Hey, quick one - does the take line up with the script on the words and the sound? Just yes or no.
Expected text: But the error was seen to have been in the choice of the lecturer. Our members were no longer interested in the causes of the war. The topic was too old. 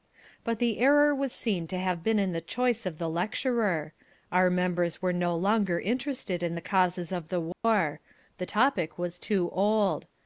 no